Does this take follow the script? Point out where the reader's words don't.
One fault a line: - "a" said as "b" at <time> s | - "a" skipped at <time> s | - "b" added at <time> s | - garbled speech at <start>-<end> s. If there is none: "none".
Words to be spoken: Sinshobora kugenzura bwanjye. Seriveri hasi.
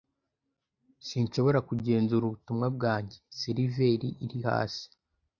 - "ubutumwa" added at 2.2 s
- "iri" added at 4.2 s